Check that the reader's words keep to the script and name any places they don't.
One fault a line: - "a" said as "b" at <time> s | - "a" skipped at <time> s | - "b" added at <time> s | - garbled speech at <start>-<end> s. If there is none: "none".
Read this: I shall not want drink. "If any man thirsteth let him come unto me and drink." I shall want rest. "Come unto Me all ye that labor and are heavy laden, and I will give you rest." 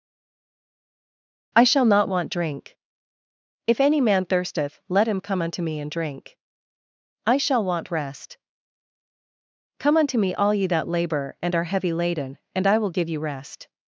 none